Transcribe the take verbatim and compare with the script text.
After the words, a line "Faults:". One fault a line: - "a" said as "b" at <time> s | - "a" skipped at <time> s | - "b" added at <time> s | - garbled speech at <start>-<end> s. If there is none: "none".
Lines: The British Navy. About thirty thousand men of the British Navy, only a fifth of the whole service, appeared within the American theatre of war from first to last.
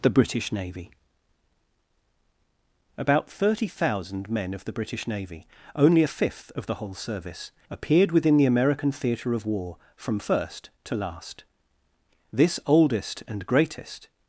The British Navy. About thirty thousand men of the British Navy, only a fifth of the whole service, appeared within the American theatre of war from first to last. This oldest and greatest
Faults:
- "This oldest and greatest" added at 12.3 s